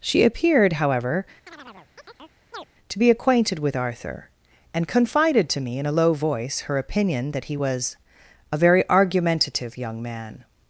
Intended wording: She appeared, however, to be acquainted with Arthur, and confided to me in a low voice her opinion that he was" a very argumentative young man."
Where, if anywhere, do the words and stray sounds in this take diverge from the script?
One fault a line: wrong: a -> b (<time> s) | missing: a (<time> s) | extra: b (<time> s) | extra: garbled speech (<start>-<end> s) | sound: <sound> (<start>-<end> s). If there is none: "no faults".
sound: chirp (1.5-2.7 s)